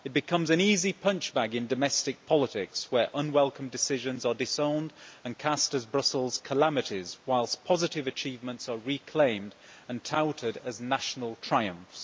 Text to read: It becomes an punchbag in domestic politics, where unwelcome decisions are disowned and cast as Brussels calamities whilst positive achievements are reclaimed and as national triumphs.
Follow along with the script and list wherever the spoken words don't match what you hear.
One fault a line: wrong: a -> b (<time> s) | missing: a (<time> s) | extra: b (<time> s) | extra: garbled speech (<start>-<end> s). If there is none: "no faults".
extra: easy (0.6 s)
extra: touted (10.0 s)